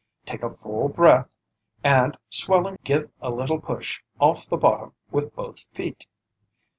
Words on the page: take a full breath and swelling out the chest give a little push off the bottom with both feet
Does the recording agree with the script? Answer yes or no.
no